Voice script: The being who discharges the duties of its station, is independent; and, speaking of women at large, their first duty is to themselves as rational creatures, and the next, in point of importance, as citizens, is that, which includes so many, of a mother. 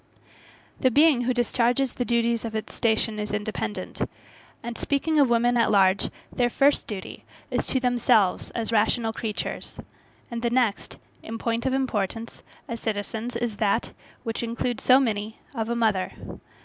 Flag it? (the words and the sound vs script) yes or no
no